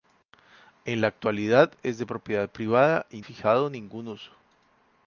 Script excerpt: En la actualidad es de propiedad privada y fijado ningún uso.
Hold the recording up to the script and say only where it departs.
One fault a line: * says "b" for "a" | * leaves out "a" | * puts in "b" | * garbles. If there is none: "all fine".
all fine